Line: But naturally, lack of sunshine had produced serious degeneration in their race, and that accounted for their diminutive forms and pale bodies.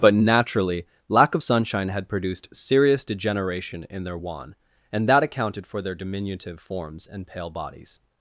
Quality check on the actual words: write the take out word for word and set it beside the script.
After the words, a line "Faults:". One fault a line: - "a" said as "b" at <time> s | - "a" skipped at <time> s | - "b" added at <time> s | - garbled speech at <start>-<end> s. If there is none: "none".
But naturally, lack of sunshine had produced serious degeneration in their wan, and that accounted for their diminutive forms and pale bodies.
Faults:
- "race" said as "wan" at 4.1 s